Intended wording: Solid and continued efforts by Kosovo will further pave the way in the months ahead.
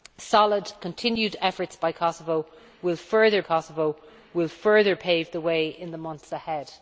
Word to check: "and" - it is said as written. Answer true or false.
false